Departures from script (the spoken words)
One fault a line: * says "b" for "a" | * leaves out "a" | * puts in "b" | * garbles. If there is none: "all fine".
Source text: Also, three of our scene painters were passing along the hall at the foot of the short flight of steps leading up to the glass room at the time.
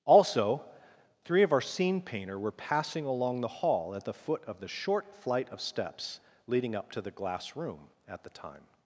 * says "painter" for "painters"